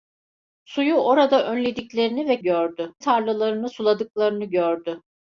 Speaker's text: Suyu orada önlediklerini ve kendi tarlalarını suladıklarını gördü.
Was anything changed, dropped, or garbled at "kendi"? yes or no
yes